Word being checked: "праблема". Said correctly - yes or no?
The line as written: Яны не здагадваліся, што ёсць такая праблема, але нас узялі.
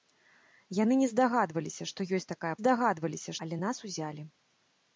no